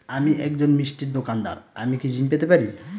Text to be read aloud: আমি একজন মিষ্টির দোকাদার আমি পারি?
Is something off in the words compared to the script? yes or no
yes